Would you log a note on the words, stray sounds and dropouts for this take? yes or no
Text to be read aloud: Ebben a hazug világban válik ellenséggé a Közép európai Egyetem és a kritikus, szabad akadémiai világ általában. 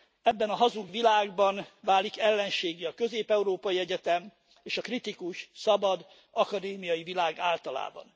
no